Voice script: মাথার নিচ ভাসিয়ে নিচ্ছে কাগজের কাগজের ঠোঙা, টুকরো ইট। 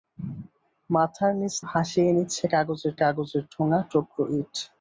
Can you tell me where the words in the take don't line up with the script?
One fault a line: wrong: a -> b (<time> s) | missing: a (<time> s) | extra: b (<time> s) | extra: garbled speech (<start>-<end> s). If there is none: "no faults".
no faults